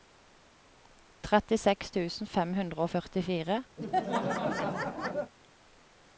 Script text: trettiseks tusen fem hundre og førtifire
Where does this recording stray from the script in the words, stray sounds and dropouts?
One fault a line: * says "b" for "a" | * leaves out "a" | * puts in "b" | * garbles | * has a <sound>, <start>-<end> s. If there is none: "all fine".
* has a laugh, 3.8-5.3 s